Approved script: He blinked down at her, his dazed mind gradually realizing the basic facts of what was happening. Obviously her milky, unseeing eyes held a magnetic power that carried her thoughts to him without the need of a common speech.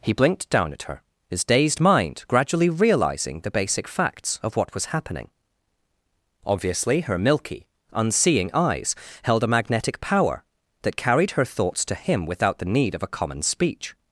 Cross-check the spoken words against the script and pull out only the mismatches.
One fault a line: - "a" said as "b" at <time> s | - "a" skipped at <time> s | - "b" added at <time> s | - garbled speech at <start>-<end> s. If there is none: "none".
none